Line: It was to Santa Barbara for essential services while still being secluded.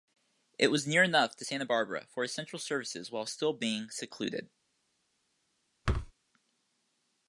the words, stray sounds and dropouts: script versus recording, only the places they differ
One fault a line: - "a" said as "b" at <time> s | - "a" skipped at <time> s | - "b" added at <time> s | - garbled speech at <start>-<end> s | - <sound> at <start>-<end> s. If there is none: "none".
- "near enough" added at 0.9 s
- thud at 5.9-6.1 s